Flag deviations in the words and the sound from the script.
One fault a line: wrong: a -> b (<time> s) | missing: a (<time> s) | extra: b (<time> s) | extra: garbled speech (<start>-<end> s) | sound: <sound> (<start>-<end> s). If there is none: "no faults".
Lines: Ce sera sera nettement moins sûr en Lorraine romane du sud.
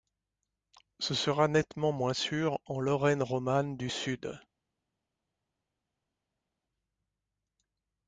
missing: sera (1.5 s)